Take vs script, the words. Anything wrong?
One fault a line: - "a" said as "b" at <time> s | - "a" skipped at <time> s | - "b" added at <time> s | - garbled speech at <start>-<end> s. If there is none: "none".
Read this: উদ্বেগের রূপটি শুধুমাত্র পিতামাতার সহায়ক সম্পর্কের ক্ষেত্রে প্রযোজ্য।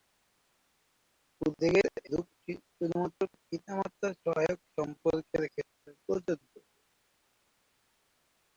none